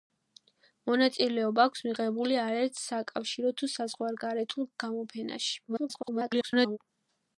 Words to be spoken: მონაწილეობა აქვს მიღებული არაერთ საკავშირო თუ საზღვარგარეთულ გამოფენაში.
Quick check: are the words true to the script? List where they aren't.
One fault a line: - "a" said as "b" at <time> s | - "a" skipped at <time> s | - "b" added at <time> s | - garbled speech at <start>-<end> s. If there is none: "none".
- garbled speech at 5.7-6.8 s